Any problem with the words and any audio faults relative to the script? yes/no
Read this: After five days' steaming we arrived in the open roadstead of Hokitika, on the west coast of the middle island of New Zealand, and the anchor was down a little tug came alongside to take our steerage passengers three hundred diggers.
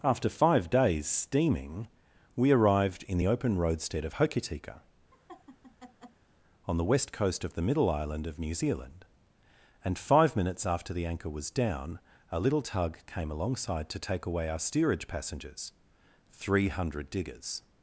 yes